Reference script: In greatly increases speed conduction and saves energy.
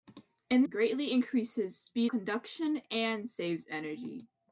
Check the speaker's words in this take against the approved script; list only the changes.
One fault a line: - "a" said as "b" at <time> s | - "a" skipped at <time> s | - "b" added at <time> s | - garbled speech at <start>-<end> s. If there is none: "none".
none